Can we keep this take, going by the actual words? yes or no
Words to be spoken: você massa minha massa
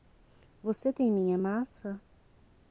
no